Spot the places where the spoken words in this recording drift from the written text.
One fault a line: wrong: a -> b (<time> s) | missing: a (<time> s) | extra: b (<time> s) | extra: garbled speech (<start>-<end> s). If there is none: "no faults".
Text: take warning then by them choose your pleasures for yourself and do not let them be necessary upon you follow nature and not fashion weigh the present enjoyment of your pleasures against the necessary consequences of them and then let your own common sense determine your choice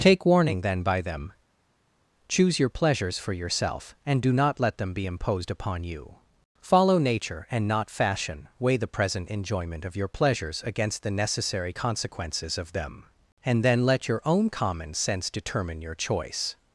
wrong: necessary -> imposed (5.0 s)